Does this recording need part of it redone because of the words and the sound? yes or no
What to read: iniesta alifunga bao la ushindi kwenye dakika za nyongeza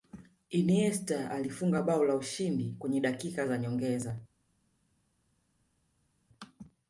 no